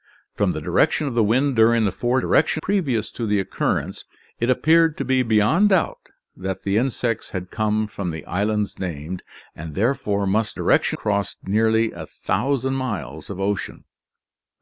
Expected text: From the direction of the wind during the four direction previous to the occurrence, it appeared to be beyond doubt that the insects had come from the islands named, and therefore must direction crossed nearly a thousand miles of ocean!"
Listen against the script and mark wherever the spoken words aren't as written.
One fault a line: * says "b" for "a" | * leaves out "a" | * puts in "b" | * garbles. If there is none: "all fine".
all fine